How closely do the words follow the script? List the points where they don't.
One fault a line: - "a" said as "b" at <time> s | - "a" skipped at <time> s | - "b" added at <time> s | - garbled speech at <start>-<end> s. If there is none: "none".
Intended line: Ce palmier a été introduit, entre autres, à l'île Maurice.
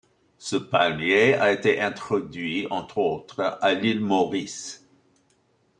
none